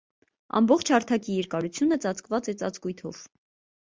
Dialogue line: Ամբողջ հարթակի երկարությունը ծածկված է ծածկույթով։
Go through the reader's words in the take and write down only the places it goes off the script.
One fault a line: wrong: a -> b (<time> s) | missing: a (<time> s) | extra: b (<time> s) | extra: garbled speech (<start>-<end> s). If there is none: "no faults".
no faults